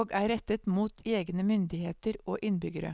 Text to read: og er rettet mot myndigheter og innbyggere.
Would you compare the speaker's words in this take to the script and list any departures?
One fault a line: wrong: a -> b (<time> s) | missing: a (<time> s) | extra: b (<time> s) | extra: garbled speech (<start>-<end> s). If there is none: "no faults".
extra: egne (1.1 s)